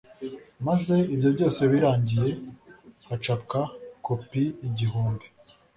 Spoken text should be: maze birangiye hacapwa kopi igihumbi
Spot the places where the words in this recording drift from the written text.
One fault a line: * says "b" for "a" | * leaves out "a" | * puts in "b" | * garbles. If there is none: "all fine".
* puts in "ibyo byose"